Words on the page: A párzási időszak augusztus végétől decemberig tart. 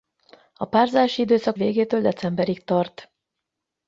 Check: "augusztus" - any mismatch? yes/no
yes